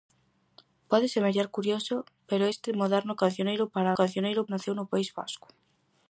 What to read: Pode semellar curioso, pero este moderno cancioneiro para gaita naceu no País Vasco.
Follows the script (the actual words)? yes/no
no